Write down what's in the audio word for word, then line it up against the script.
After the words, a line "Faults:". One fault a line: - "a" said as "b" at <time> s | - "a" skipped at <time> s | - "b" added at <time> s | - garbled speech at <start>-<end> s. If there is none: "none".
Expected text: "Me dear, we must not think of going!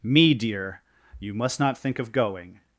"Me dear, you must not think of going!
Faults:
- "we" said as "you" at 1.2 s